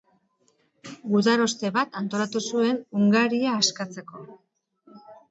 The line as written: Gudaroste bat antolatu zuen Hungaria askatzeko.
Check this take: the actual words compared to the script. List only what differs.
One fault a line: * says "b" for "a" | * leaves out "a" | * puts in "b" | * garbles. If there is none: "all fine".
all fine